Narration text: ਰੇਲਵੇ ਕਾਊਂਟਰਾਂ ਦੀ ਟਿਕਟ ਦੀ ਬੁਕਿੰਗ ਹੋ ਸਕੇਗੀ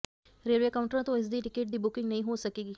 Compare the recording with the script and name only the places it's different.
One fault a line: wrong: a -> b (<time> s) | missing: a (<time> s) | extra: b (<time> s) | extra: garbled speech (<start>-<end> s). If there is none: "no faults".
extra: ਤੋਂ ਇਸ (1.0 s)
extra: ਨਹੀਂ (2.1 s)